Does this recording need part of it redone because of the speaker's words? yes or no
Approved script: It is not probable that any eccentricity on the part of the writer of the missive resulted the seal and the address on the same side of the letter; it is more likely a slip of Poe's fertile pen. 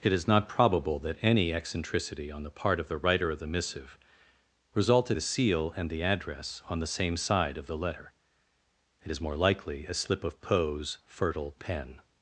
no